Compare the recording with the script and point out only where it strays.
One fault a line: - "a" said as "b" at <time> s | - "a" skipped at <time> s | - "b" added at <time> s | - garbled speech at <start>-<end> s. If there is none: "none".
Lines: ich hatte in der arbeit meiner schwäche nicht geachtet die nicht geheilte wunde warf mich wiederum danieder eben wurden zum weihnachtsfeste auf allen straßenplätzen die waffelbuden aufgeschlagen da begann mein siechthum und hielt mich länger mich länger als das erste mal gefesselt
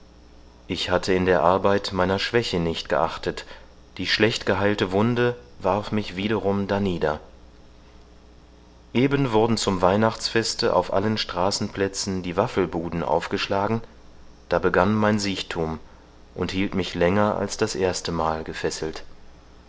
- "nicht" said as "schlecht" at 4.1 s
- "mich länger" skipped at 17.4 s